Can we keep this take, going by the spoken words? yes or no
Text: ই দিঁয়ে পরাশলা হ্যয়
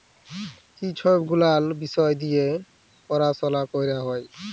no